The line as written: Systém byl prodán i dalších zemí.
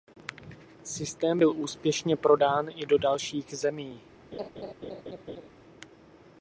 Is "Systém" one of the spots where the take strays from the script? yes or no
no